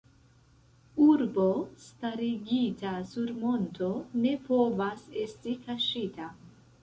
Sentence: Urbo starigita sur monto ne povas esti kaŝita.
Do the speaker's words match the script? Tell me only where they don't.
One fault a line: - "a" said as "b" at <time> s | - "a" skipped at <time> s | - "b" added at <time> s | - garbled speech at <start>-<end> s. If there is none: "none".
none